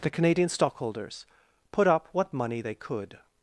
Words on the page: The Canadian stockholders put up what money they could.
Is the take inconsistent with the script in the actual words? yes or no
no